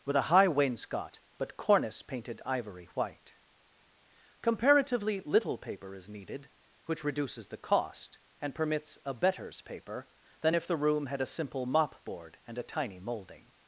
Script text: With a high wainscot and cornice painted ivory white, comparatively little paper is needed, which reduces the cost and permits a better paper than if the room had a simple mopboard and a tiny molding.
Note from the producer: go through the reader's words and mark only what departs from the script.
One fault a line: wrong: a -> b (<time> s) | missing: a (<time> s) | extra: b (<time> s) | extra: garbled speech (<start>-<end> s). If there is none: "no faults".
wrong: and -> but (1.4 s)
wrong: better -> betters (9.1 s)